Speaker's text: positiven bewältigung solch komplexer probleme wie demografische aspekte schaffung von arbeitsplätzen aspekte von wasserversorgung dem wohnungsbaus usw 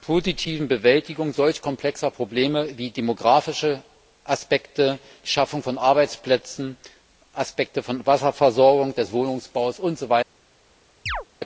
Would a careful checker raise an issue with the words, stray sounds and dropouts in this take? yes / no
yes